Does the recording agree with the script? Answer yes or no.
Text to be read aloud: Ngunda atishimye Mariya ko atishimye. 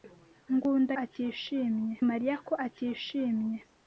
yes